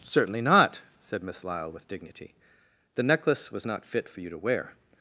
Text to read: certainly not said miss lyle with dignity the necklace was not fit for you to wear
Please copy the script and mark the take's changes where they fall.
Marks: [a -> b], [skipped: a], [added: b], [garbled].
certainly not said miss lyle with dignity the necklace was not fit for you to wear